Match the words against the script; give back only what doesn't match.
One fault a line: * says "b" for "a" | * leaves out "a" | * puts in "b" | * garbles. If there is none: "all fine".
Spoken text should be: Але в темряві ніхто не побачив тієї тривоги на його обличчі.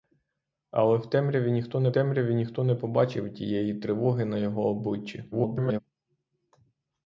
* puts in "темряві ніхто не"
* garbles